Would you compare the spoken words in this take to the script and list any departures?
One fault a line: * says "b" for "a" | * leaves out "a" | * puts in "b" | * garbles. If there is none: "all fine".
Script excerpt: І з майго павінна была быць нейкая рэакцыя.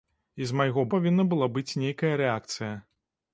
all fine